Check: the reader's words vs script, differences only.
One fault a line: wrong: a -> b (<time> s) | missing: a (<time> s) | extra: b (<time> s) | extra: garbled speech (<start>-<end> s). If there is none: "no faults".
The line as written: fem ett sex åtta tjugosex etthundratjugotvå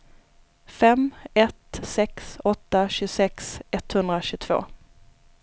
no faults